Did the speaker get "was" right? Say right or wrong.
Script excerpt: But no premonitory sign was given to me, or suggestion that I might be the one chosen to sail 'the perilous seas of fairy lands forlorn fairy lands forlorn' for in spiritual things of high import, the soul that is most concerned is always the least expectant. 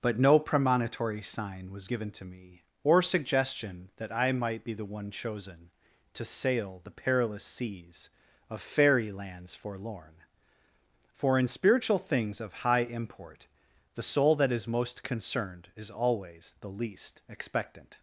right